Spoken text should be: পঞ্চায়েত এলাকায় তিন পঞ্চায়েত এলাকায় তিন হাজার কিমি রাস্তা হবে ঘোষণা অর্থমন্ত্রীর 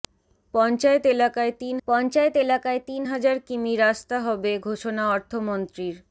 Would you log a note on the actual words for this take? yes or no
no